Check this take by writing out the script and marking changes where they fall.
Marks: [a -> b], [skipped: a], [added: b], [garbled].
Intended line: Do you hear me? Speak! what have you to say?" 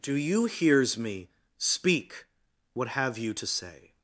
Do you [hear -> hears] me? Speak! what have you to say?"